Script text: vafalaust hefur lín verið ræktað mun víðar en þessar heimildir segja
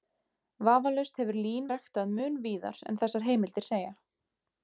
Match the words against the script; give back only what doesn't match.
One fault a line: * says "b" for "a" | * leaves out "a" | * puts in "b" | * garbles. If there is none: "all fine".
* leaves out "verið"